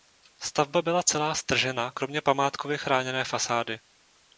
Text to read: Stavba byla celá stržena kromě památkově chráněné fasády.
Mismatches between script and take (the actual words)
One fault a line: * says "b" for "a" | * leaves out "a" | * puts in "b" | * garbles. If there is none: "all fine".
all fine